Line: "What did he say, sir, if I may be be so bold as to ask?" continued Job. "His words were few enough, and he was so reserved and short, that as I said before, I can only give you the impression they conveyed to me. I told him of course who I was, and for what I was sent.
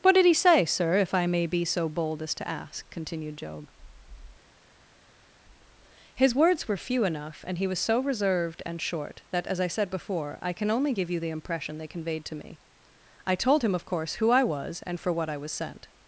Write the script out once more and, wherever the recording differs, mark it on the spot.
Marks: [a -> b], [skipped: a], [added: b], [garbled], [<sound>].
"What did he say, sir, if I may be [skipped: be] so bold as to ask?" continued Job. "His words were few enough, and he was so reserved and short, that as I said before, I can only give you the impression they conveyed to me. I told him of course who I was, and for what I was sent.